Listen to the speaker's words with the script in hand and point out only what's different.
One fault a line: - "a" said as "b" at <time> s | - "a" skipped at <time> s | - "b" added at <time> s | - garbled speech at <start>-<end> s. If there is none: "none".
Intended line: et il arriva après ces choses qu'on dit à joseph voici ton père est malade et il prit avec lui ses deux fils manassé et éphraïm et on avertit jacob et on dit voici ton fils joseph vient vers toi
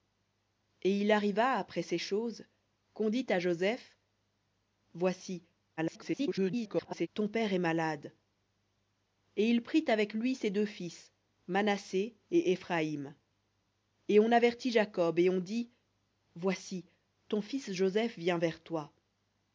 - garbled speech at 5.8-7.1 s